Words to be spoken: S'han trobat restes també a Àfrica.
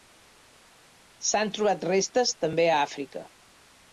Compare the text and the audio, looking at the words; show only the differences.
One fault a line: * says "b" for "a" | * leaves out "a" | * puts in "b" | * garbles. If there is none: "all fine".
all fine